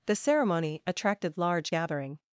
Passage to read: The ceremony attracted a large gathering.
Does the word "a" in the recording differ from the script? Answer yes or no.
yes